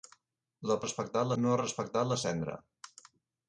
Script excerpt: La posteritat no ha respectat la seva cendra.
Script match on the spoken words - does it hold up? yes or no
no